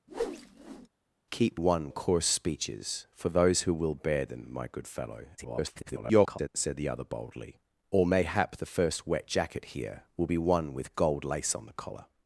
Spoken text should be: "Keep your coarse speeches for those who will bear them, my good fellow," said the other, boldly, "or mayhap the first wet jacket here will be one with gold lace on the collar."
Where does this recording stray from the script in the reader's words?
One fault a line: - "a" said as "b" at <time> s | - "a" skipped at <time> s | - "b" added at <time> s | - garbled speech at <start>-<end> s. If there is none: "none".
- "your" said as "one" at 1.5 s
- garbled speech at 5.4-6.5 s